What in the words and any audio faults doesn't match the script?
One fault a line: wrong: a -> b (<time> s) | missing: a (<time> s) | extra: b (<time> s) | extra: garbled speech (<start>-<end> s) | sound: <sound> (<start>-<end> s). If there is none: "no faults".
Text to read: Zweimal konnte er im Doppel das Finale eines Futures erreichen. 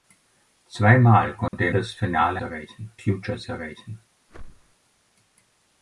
sound: dropout (1.5-1.5 s)
missing: im Doppel (1.7 s)
wrong: eines -> erreichen (2.4 s)
sound: whoosh (4.3-4.8 s)